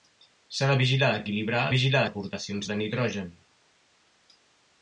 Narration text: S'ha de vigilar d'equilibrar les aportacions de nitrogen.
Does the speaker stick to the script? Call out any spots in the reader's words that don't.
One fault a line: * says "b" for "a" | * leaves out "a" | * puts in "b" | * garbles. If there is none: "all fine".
* says "vigilar" for "les"